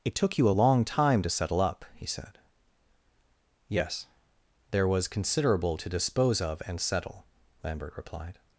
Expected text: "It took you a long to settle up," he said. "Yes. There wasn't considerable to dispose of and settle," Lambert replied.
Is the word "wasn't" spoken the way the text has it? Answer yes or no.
no